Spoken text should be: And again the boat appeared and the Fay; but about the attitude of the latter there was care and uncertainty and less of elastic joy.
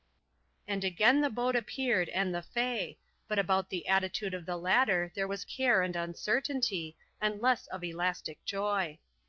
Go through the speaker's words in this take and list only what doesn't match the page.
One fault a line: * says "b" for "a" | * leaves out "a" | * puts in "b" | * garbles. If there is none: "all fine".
all fine